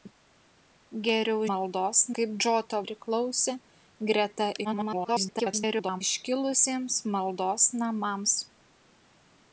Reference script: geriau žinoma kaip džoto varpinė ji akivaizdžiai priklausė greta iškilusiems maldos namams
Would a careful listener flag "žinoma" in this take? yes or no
yes